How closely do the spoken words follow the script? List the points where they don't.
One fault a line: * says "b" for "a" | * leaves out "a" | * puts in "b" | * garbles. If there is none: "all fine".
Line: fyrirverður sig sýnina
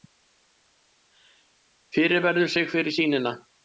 * puts in "fyrir"